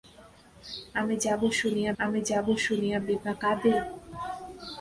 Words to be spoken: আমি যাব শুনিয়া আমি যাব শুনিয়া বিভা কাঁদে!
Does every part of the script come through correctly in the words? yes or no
yes